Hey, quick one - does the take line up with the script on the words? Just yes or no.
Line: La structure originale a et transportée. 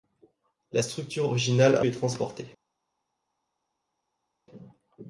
yes